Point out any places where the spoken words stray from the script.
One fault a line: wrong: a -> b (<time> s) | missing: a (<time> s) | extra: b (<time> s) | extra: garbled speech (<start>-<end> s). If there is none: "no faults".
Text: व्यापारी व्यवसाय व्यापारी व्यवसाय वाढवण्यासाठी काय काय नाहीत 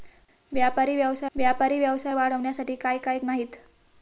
no faults